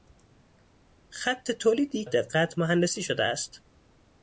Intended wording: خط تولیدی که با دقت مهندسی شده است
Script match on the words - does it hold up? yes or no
no